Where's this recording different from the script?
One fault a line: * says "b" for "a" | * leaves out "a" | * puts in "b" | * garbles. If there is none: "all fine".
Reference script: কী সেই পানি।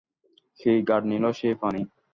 * puts in "গাঢ় নীল"